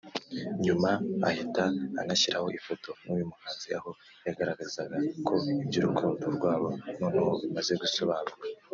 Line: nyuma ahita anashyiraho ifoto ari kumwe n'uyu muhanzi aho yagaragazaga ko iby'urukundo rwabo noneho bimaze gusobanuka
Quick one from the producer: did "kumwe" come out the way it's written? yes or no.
no